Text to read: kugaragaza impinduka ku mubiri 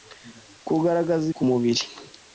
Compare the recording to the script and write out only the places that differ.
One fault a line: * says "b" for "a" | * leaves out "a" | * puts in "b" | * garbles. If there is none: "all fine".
* leaves out "impinduka"